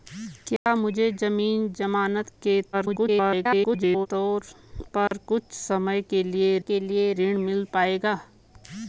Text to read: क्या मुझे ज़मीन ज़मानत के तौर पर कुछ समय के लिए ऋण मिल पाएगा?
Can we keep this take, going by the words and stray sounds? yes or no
no